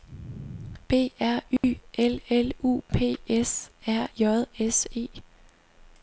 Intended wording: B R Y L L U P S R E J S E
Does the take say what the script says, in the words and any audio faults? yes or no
no